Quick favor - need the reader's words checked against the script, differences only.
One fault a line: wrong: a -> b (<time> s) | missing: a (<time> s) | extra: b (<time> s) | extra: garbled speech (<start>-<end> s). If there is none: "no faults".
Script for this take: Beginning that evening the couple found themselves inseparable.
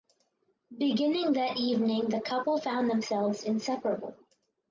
no faults